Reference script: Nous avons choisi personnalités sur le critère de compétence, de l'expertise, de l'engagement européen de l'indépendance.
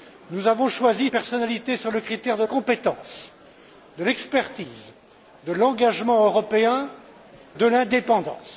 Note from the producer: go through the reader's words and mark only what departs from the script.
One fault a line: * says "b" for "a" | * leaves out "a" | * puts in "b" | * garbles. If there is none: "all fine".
all fine